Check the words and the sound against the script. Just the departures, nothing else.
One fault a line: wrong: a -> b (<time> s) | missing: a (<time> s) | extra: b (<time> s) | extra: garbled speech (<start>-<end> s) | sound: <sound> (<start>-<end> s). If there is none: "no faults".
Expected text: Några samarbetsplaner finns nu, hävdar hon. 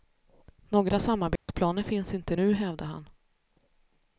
sound: dropout (1.4-1.5 s)
extra: inte (2.1 s)
wrong: hon -> han (2.9 s)